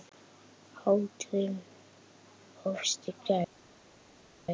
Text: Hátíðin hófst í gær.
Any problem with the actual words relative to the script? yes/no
no